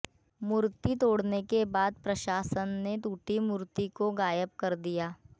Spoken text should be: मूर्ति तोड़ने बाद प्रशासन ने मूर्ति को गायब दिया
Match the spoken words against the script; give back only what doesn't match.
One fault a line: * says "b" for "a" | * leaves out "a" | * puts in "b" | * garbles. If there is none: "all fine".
* puts in "के"
* puts in "टूटी"
* puts in "कर"